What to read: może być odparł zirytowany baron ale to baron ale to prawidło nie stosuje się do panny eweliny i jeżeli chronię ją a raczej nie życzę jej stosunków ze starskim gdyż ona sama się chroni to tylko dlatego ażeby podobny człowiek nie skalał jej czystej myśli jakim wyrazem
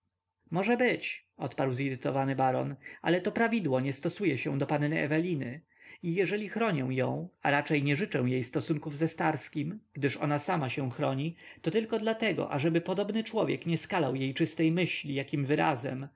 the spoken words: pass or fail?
fail